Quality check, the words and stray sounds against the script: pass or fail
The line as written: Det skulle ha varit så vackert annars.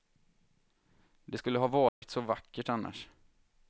fail